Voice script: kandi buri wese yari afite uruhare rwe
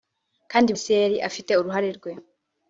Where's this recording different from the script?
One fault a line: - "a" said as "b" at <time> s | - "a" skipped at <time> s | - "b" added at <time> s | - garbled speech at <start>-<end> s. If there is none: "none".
- "buri" skipped at 0.7 s